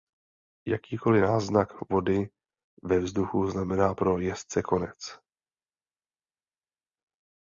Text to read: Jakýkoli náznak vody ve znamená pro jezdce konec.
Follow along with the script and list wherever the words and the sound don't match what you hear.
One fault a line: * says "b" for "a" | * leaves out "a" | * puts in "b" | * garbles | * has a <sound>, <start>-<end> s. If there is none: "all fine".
* puts in "vzduchu"